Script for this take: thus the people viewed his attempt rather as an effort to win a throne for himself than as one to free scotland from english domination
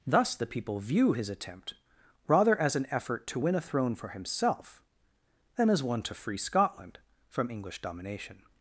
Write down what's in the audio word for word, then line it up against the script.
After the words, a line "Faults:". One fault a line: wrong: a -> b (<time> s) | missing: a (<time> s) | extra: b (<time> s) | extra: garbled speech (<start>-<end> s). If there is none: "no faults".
thus the people view his attempt rather as an effort to win a throne for himself than as one to free scotland from english domination
Faults:
wrong: viewed -> view (0.8 s)